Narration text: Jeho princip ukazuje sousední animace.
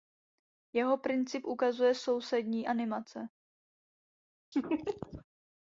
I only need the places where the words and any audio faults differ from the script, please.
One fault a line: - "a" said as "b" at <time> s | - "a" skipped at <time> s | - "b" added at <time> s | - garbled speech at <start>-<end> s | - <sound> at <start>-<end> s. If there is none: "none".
- laugh at 4.5-5.2 s